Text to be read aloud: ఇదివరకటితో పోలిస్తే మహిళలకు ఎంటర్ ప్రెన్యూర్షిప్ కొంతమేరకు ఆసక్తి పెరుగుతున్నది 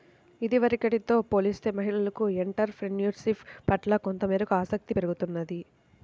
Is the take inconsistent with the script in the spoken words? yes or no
yes